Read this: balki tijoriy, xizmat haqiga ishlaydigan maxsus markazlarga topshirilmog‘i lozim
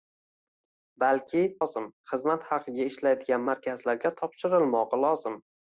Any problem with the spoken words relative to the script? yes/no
yes